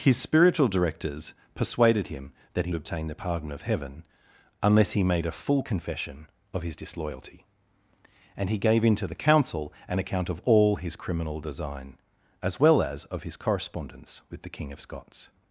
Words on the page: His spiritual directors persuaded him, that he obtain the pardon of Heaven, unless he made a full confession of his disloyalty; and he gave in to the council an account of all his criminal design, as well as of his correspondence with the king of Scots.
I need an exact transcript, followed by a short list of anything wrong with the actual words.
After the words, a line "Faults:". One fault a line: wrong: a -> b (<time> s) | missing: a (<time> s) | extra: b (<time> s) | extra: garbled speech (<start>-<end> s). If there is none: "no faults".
His spiritual directors persuaded him, that he obtain the pardon of Heaven, unless he made a full confession of his disloyalty; and he gave in to the council an account of all his criminal design, as well as of his correspondence with the king of Scots.
Faults:
no faults